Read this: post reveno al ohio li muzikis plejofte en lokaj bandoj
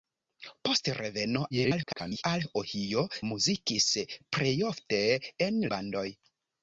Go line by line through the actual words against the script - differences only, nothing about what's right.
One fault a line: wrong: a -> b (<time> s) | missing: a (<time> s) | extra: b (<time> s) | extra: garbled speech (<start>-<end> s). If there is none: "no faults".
extra: garbled speech (1.5-2.2 s)
missing: li (3.0 s)
missing: lokaj (5.6 s)